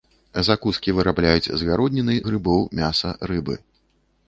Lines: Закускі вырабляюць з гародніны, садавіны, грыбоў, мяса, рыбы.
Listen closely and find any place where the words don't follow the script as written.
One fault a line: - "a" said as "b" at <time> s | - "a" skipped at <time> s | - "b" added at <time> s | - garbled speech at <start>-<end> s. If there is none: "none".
- "садавіны" skipped at 2.2 s